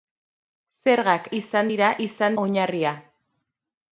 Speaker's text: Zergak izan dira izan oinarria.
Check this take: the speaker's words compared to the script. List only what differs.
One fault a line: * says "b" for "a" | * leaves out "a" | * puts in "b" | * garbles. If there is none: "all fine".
all fine